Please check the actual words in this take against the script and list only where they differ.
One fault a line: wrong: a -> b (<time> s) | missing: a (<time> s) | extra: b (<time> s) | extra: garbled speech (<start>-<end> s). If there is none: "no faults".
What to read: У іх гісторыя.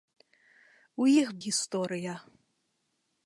no faults